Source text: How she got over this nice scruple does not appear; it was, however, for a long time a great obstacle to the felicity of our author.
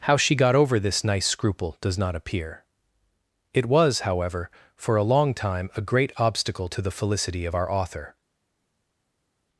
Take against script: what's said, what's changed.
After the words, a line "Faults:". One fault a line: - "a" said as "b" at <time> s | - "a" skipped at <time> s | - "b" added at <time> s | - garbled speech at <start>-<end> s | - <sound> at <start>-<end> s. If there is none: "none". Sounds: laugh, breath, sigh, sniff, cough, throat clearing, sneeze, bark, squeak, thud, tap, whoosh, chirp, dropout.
How she got over this nice scruple does not appear; it was, however, for a long time a great obstacle to the felicity of our author.
Faults:
none